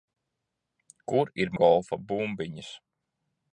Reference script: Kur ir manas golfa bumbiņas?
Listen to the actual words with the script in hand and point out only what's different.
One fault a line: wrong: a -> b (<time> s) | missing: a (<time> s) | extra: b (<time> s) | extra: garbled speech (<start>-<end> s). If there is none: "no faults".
missing: manas (1.5 s)